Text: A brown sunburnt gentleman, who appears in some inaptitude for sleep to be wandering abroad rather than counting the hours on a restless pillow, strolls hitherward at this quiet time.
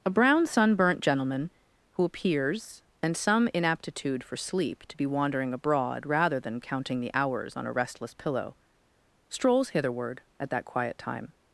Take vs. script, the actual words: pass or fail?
fail